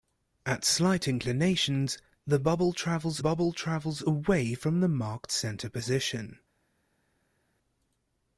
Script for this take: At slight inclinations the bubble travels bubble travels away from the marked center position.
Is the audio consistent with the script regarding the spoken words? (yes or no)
yes